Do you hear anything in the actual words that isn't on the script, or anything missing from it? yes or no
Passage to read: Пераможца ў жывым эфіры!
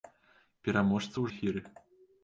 yes